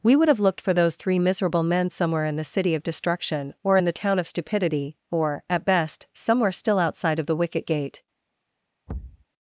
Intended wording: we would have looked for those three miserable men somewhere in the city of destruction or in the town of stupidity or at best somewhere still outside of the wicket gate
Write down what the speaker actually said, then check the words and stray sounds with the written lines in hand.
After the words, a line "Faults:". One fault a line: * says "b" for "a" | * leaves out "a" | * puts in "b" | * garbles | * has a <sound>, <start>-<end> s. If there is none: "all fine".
we would have looked for those three miserable men somewhere in the city of destruction or in the town of stupidity or at best somewhere still outside of the wicket gate
Faults:
* has a thud, 8.9-9.2 s